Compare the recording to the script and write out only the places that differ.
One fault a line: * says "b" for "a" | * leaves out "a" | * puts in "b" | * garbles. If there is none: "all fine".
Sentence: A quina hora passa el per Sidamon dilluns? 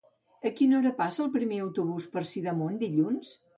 * puts in "primer autobús"